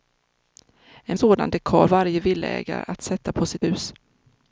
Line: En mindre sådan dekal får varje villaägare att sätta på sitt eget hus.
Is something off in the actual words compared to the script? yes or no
yes